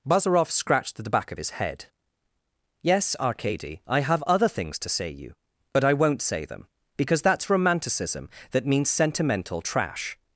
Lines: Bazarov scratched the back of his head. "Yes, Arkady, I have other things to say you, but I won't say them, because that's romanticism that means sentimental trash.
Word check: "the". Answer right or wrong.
right